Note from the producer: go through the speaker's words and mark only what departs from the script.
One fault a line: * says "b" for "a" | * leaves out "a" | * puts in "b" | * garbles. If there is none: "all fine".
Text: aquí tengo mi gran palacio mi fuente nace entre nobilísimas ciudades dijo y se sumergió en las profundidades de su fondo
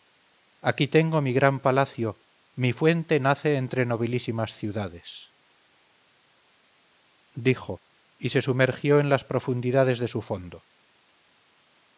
all fine